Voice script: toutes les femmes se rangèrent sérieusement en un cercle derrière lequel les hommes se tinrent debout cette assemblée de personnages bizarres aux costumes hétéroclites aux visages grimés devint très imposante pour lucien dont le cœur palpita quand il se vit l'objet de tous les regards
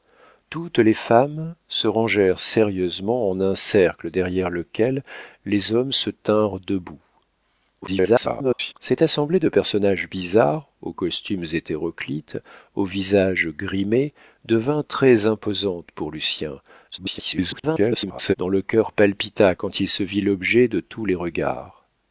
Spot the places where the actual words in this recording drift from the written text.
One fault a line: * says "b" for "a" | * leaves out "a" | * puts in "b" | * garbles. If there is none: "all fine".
* garbles
* garbles